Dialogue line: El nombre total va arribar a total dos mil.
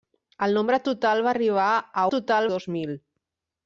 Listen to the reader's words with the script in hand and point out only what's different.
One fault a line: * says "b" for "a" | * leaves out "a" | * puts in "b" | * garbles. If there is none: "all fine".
all fine